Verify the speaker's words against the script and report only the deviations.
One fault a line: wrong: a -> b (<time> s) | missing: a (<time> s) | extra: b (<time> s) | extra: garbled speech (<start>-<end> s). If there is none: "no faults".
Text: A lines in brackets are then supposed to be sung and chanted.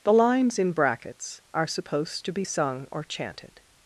wrong: A -> The (0.0 s)
missing: then (1.7 s)
wrong: and -> or (2.9 s)